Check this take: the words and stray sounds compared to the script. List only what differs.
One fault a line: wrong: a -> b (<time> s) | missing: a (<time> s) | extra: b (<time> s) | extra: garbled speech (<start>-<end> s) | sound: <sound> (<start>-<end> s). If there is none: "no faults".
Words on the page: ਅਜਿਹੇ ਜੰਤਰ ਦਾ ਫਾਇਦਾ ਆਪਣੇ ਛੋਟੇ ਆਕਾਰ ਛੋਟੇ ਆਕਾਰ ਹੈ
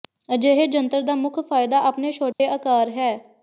extra: ਮੁੱਖ (1.1 s)
sound: dropout (2.3-2.4 s)
missing: ਛੋਟੇ ਆਕਾਰ (2.9 s)